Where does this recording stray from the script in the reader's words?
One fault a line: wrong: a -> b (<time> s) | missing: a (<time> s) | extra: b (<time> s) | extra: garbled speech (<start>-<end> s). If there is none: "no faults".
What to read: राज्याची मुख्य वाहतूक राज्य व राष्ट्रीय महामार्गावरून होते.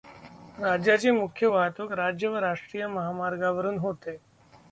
no faults